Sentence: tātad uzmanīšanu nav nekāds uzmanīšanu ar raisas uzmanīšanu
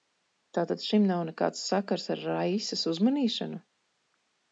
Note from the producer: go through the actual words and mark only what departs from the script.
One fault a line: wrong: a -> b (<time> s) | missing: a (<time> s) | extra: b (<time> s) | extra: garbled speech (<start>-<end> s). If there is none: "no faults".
wrong: uzmanīšanu -> šim (0.8 s)
wrong: uzmanīšanu -> sakars (1.7 s)